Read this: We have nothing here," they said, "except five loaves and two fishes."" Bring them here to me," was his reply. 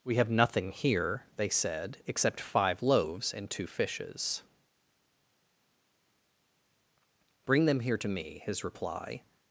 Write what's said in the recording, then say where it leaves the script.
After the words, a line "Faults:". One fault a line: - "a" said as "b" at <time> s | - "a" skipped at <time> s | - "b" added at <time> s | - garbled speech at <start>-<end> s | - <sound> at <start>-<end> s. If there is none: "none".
We have nothing here," they said, "except five loaves and two fishes."" Bring them here to me," his reply.
Faults:
- "was" skipped at 8.4 s